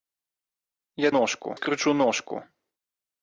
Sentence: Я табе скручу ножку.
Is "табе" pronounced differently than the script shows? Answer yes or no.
yes